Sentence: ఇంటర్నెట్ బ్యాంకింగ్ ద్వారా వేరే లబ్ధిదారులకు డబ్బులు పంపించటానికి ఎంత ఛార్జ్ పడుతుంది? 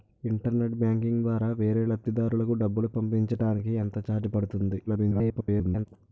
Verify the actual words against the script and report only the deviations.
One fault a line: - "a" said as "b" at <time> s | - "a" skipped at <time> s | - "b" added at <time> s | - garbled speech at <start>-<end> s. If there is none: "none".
- garbled speech at 4.9-5.9 s